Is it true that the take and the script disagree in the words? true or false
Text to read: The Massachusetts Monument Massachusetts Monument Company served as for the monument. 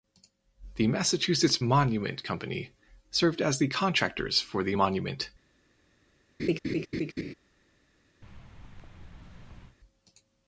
true